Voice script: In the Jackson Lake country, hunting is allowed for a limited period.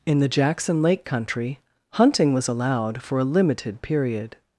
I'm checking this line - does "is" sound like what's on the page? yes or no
no